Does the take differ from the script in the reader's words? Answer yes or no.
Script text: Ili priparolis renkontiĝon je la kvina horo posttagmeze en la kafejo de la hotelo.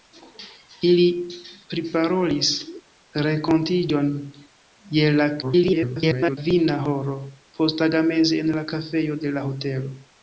yes